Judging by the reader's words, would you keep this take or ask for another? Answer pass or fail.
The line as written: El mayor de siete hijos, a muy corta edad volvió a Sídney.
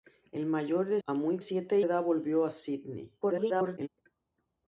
fail